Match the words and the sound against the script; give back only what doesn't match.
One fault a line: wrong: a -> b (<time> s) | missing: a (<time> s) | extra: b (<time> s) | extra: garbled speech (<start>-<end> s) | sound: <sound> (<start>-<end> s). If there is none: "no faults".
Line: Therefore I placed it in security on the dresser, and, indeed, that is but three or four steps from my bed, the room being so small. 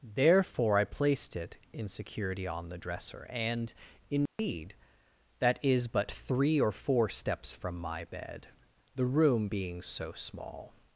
sound: dropout (4.3-4.4 s)